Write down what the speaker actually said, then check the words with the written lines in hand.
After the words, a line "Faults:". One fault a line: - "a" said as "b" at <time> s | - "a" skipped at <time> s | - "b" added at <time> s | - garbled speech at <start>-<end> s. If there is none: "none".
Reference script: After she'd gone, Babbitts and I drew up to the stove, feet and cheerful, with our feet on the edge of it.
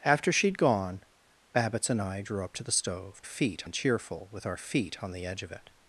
After she'd gone, Babbitts and I drew up to the stove, feet and cheerful, with our feet on the edge of it.
Faults:
none